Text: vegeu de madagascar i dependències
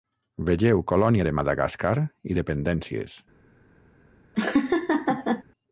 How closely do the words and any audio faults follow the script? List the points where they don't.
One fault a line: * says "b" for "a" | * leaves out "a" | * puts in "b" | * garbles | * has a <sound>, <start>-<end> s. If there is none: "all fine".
* puts in "colònia"
* has a laugh, 4.3-5.4 s